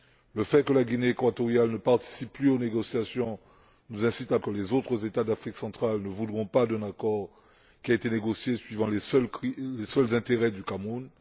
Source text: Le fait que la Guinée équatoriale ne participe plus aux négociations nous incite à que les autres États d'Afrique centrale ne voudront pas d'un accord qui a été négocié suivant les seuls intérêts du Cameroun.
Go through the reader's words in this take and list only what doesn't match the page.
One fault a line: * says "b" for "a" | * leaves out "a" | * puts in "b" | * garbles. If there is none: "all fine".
all fine